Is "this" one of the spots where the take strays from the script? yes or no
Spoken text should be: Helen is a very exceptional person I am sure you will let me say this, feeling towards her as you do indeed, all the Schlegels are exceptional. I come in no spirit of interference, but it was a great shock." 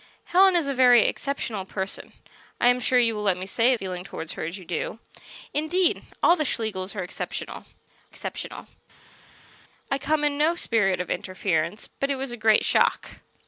yes